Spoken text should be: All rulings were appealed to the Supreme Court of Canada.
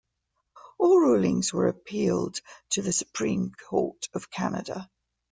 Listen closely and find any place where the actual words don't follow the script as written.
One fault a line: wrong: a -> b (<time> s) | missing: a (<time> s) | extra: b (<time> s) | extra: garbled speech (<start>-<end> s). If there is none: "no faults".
no faults